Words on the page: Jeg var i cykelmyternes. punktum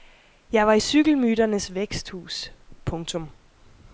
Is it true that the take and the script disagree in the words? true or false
true